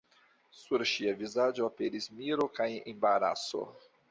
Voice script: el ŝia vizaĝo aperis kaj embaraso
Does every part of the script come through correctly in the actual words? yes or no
no